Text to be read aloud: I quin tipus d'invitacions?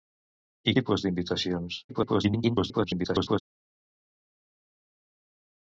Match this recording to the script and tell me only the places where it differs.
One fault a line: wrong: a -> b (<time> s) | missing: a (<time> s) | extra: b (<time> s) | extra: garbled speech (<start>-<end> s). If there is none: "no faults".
missing: quin (0.8 s)
extra: garbled speech (1.9-3.4 s)